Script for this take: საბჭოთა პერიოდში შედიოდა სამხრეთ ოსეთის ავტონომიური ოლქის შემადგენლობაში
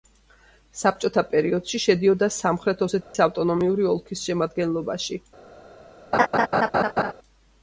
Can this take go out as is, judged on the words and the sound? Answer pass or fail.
fail